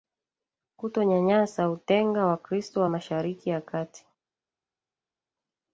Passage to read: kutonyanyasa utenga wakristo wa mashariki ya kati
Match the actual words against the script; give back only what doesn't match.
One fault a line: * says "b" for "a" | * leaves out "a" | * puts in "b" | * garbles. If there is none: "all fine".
all fine